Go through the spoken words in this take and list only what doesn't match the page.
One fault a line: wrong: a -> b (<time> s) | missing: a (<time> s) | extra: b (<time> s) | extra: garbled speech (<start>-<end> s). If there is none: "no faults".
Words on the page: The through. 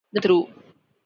no faults